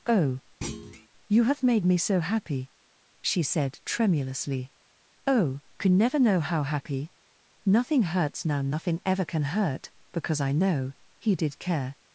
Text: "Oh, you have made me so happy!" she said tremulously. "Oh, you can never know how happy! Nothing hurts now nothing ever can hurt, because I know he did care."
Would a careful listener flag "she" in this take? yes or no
no